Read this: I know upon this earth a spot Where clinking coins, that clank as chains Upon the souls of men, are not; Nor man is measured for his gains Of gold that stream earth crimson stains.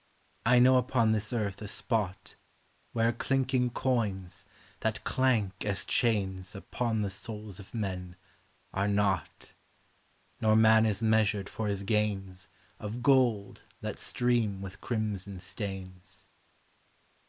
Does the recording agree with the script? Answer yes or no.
no